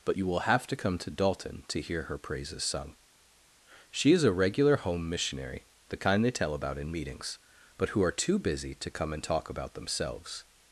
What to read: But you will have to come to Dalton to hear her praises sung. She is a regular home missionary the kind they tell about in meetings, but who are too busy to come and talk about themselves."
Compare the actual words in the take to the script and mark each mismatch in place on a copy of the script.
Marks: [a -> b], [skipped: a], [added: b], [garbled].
But you will have to come to Dalton to hear her praises sung. She is a regular home missionary the kind they tell about in meetings, but who are too busy to come and talk about themselves."